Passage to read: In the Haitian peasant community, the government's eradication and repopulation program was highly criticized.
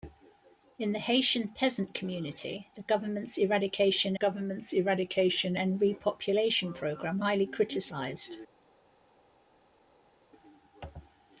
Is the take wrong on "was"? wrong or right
wrong